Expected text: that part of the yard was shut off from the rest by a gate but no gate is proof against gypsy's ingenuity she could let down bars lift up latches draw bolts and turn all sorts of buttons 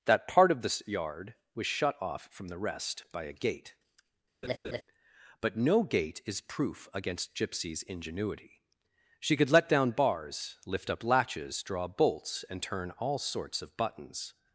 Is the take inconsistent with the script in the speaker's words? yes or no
no